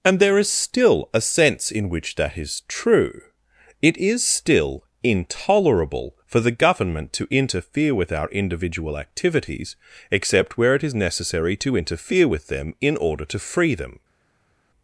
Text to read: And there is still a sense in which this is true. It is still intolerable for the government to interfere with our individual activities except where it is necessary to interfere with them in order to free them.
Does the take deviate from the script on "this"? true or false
true